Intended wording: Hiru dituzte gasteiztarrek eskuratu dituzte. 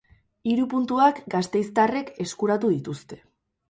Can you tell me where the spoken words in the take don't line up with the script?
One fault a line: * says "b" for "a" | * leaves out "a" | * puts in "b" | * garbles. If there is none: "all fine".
* says "puntuak" for "dituzte"